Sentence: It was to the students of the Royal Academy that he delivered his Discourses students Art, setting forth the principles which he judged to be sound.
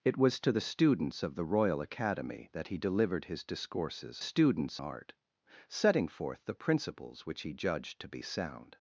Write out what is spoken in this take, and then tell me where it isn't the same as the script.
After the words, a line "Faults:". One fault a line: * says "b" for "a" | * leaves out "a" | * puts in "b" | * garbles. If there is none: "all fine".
It was to the students of the Royal Academy that he delivered his Discourses students Art, setting forth the principles which he judged to be sound.
Faults:
all fine